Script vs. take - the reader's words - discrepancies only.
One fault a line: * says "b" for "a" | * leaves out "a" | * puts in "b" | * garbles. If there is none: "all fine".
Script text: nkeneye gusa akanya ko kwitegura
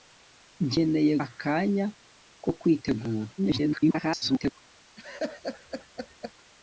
* leaves out "gusa"
* garbles